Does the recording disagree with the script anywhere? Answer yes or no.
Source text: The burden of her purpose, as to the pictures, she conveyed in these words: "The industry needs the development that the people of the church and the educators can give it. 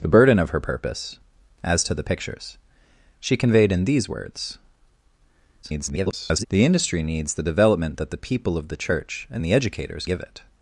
yes